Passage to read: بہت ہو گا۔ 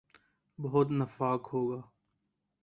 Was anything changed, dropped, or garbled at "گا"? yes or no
no